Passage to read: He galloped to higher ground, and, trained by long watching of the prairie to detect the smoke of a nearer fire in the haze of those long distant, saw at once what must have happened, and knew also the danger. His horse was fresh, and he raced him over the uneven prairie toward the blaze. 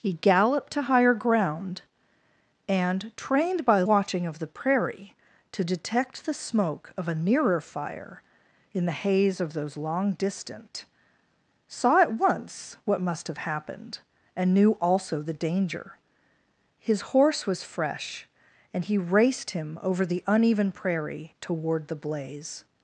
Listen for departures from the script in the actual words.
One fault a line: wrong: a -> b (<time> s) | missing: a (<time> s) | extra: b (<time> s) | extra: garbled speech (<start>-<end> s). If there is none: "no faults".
missing: long (3.8 s)